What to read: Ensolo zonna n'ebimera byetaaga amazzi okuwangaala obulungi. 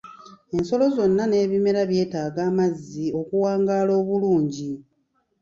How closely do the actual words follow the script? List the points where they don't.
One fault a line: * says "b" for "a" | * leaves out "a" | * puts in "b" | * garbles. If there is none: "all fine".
all fine